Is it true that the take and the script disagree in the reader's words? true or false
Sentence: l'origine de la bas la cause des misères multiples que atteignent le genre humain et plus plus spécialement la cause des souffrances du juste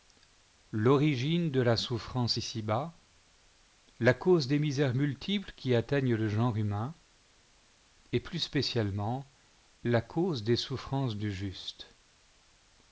true